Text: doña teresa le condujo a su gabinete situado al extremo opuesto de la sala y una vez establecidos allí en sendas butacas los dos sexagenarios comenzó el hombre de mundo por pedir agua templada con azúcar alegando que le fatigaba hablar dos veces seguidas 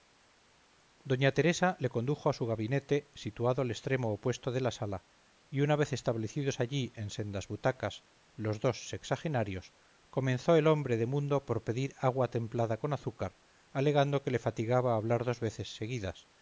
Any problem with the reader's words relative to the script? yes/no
no